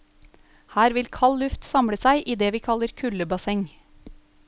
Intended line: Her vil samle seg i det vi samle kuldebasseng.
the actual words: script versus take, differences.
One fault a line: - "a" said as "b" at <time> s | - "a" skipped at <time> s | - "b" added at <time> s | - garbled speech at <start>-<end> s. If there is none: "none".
- "kald luft" added at 1.2 s
- "samle" said as "kaller" at 2.7 s